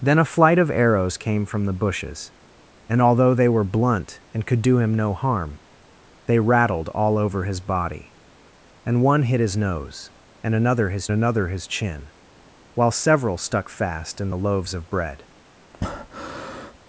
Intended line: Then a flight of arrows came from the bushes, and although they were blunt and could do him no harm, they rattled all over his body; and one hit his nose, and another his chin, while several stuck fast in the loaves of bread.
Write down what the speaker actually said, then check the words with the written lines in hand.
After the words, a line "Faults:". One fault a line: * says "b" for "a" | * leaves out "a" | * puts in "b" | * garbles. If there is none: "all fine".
Then a flight of arrows came from the bushes, and although they were blunt and could do him no harm, they rattled all over his body; and one hit his nose, and another his another his chin, while several stuck fast in the loaves of bread.
Faults:
* puts in "another his"